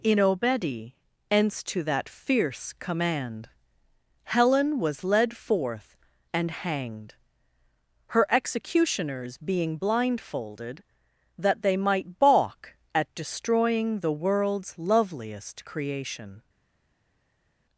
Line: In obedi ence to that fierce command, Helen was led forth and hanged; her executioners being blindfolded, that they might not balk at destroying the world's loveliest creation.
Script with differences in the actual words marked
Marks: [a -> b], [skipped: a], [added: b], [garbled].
In obedi ence to that fierce command, Helen was led forth and hanged; her executioners being blindfolded, that they might [skipped: not] balk at destroying the world's loveliest creation.